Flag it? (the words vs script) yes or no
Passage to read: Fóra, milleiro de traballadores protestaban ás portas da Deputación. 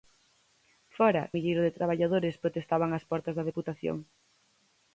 no